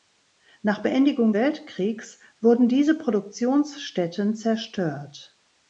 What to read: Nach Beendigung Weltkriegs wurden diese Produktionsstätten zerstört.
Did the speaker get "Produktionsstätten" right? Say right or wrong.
right